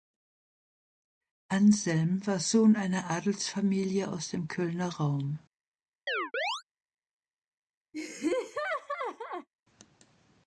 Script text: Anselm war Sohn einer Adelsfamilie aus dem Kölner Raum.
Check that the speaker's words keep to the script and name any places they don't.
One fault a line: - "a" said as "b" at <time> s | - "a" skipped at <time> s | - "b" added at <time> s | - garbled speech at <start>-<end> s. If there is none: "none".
none